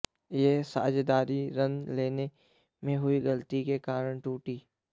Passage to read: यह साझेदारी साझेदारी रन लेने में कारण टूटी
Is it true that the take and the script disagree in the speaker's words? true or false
true